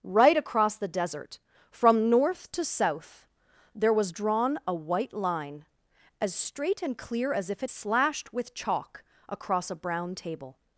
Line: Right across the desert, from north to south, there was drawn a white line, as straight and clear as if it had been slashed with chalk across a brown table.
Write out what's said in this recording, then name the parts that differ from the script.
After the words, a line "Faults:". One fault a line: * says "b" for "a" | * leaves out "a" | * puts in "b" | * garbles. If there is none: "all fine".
Right across the desert, from north to south, there was drawn a white line, as straight and clear as if it slashed with chalk across a brown table.
Faults:
* leaves out "had been"